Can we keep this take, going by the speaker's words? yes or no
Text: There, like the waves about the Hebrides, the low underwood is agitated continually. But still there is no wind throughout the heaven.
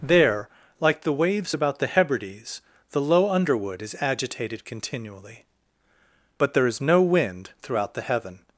no